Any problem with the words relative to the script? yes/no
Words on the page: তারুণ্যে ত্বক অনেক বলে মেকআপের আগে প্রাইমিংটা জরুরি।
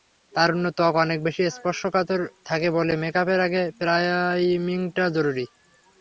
yes